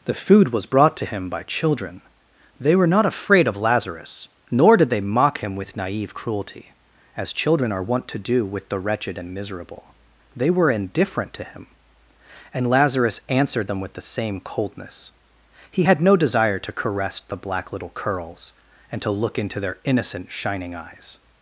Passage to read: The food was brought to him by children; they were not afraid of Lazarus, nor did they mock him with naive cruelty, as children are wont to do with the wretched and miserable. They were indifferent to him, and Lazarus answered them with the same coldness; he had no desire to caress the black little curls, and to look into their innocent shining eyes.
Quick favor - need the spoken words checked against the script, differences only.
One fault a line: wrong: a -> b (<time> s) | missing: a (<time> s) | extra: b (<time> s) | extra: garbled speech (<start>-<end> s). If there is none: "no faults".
no faults